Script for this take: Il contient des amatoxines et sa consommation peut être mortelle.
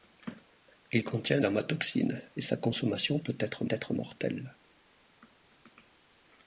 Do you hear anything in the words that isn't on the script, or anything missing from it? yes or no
yes